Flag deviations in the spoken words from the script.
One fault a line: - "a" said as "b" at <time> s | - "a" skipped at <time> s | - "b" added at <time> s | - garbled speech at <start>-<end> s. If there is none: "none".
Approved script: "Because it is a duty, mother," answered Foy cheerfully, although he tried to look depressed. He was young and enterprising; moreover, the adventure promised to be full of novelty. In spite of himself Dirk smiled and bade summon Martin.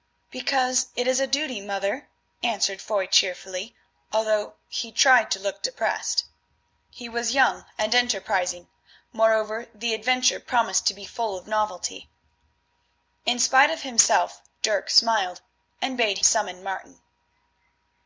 none